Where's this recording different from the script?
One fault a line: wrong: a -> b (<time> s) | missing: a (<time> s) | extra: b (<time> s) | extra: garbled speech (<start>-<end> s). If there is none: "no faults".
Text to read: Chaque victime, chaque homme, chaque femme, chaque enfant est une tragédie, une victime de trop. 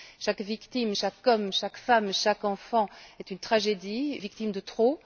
missing: une (4.1 s)